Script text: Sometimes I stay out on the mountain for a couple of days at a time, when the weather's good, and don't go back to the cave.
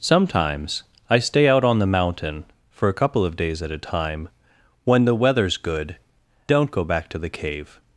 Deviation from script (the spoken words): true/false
true